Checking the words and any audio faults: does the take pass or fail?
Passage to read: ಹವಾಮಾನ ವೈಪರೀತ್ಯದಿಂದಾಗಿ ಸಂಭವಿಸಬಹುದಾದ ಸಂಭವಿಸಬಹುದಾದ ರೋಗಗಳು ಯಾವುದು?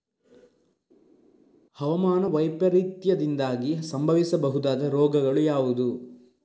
fail